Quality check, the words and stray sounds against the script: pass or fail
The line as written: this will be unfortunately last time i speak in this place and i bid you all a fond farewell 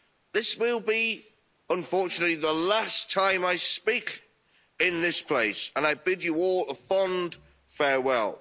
fail